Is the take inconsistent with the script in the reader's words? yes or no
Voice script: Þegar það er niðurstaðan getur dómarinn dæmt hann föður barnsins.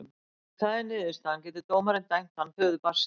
yes